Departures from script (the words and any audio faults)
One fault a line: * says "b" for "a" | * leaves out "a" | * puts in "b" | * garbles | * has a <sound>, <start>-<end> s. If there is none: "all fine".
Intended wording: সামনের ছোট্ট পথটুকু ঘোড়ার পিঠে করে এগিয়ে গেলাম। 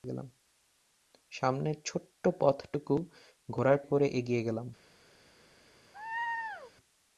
* leaves out "পিঠে"
* has a laugh, 5.9-6.7 s